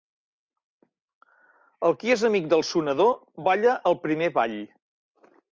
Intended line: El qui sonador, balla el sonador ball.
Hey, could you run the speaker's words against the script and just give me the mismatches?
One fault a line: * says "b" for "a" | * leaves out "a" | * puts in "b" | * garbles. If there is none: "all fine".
* puts in "és amic del"
* says "primer" for "sonador"